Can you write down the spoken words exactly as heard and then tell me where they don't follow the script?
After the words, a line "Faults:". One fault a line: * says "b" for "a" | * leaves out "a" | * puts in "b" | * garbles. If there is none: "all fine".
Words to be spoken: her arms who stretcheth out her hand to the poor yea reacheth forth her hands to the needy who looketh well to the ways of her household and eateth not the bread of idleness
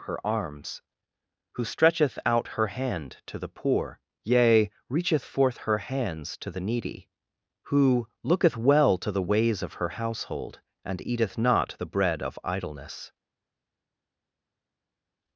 her arms who stretcheth out her hand to the poor yea reacheth forth her hands to the needy who looketh well to the ways of her household and eateth not the bread of idleness
Faults:
all fine